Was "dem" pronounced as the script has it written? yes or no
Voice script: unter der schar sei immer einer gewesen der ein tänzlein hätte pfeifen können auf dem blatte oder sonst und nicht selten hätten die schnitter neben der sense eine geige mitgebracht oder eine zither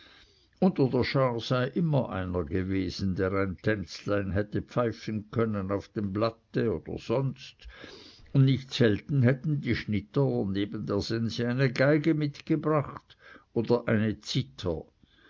yes